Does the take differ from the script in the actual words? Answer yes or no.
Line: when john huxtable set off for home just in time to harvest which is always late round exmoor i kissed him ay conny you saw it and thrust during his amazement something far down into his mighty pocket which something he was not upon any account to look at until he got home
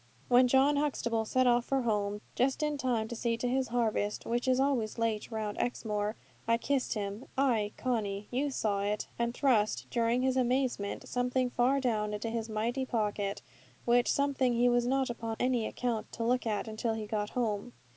yes